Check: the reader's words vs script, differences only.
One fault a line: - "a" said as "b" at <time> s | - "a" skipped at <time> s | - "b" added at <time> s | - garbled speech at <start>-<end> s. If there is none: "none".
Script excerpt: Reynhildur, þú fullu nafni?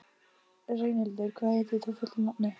- "hvað heitir" added at 1.4 s